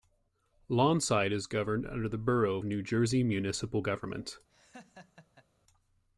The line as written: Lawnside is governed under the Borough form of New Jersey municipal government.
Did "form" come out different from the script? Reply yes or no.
yes